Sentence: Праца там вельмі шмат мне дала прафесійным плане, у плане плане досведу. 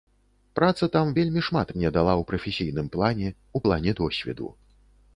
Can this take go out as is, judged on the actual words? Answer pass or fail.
fail